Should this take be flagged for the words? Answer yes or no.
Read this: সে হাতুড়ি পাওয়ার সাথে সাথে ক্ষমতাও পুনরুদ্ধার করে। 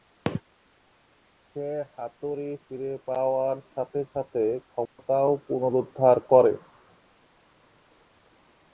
yes